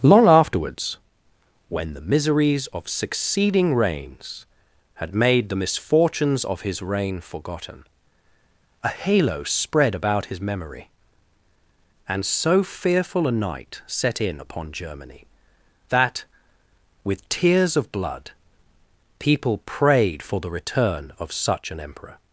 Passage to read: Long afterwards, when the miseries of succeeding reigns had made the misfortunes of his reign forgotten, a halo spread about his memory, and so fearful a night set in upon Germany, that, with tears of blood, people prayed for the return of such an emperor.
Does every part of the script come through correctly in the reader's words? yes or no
yes